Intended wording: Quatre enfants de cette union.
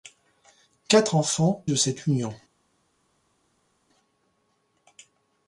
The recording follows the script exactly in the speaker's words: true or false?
true